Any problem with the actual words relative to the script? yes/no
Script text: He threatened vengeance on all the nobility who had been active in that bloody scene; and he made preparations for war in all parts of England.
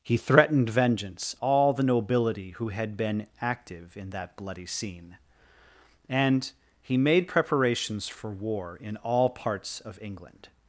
yes